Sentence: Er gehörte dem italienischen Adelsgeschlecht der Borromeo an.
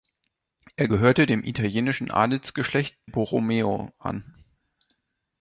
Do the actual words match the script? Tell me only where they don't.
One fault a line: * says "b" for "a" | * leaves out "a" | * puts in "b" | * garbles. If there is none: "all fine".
* leaves out "der"